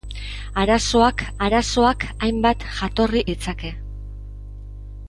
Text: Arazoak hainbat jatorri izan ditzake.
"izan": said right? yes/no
no